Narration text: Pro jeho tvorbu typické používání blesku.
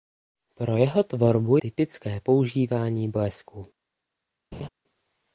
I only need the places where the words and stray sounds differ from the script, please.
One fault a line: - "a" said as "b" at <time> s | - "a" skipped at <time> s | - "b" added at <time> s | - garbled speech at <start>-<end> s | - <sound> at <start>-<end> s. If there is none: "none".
- laugh at 4.5-4.7 s